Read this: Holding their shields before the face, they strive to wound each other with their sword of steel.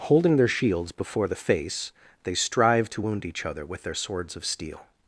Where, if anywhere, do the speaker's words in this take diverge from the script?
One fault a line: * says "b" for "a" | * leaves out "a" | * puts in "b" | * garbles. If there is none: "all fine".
* says "swords" for "sword"